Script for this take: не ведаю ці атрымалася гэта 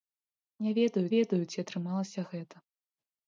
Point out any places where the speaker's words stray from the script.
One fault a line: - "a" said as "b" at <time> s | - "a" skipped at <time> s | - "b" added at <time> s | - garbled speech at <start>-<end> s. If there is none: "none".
- "ведаю" added at 1.1 s